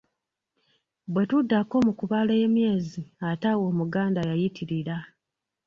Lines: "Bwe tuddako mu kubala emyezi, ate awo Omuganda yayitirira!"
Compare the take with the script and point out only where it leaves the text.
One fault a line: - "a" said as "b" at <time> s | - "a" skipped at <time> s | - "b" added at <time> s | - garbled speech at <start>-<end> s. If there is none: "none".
none